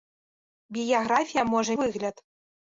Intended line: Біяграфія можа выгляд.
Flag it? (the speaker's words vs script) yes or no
no